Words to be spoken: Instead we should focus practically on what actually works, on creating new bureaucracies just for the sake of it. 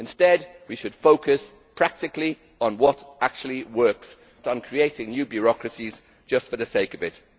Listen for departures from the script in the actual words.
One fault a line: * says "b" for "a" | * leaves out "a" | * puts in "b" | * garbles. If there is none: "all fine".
all fine